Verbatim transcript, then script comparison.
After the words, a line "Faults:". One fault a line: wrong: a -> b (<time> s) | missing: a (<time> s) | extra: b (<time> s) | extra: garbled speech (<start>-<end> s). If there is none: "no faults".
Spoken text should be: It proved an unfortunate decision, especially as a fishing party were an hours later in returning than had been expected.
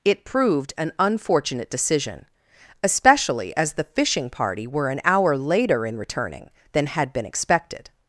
It proved an unfortunate decision, especially as the fishing party were an hour later in returning than had been expected.
Faults:
wrong: a -> the (3.7 s)
wrong: hours -> hour (5.0 s)